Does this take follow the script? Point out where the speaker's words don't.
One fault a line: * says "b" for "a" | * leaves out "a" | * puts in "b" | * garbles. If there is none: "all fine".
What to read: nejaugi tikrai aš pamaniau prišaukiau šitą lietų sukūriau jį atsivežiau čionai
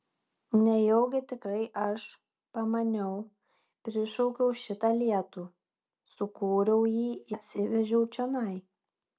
all fine